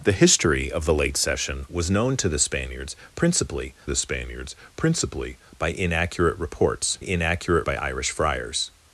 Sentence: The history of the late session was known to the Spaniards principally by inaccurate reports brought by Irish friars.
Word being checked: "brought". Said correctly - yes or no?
no